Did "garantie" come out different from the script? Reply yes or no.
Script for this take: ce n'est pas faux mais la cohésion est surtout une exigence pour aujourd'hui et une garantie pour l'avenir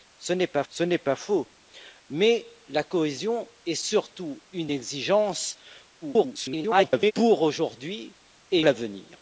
yes